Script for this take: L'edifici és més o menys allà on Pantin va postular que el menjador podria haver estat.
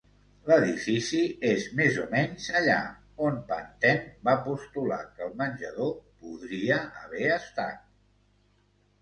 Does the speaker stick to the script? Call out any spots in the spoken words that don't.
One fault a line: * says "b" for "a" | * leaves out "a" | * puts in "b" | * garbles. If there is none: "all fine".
all fine